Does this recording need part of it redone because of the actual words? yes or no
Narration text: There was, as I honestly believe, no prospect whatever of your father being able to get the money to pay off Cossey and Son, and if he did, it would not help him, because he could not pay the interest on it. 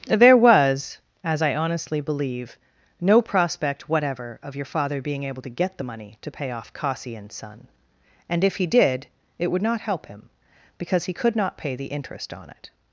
no